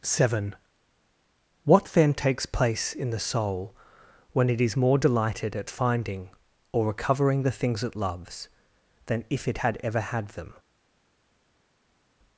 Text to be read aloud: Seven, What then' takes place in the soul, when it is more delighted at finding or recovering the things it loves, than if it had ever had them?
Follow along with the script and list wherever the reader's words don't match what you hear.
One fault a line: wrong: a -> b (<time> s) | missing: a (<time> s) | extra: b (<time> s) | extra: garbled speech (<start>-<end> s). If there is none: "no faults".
no faults